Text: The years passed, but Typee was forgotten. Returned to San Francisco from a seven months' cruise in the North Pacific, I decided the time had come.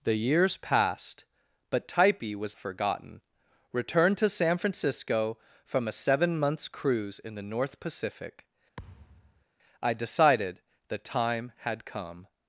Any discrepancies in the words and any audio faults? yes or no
yes